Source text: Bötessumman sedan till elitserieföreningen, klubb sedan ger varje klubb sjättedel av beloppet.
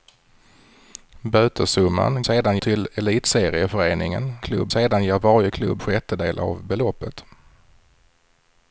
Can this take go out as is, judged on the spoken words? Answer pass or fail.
pass